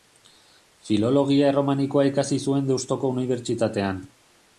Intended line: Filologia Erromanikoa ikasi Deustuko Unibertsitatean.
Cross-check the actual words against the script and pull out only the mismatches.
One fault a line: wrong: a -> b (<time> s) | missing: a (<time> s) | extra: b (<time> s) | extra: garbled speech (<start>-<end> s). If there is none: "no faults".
extra: zuen (2.5 s)